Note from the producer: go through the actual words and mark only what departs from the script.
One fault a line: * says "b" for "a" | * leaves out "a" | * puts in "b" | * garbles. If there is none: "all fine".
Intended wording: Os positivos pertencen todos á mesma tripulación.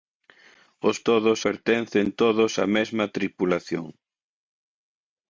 * says "todos" for "positivos"